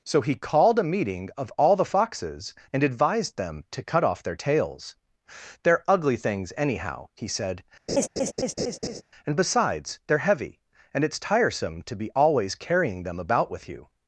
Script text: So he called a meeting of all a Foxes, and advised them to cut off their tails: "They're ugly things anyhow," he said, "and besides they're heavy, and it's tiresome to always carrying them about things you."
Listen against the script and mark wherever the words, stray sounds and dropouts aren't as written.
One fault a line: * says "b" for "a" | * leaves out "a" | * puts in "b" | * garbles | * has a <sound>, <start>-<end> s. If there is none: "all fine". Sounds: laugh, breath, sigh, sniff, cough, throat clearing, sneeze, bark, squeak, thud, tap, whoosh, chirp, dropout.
* says "the" for "a"
* has a laugh, 7.9-9.0 s
* puts in "be"
* says "with" for "things"